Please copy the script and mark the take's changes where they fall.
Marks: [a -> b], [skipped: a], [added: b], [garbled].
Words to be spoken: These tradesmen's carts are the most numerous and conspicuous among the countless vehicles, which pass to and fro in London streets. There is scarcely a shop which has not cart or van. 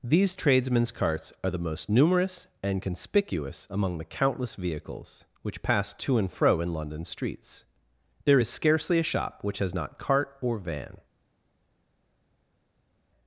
These tradesmen's carts are the most numerous and conspicuous among the countless vehicles, which pass to and fro in London streets. There is scarcely a shop which has not cart or van.